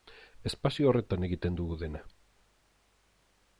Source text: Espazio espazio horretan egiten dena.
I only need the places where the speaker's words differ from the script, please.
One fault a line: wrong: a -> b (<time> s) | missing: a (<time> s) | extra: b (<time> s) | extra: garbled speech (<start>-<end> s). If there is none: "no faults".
missing: espazio (0.9 s)
extra: dugu (1.6 s)